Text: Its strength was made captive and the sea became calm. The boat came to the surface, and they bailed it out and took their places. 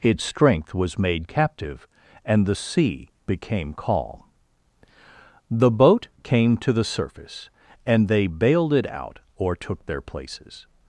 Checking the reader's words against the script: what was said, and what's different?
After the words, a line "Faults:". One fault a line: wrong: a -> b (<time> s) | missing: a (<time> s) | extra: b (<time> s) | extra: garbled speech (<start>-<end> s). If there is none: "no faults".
Its strength was made captive and the sea became calm. The boat came to the surface, and they bailed it out or took their places.
Faults:
wrong: and -> or (9.4 s)